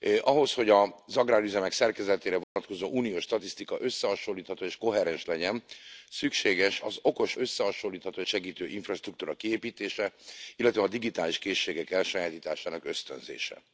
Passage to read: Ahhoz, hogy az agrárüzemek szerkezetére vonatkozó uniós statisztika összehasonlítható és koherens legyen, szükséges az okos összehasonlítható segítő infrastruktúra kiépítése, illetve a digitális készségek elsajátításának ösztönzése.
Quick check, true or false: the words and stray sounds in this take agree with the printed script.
false